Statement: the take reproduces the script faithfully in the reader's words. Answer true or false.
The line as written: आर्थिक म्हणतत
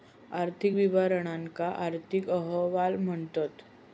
false